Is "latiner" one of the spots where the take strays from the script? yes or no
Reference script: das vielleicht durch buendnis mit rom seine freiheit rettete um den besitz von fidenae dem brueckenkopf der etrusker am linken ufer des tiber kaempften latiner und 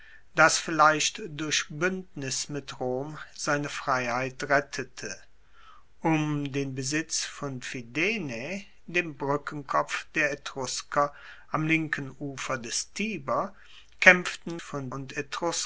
yes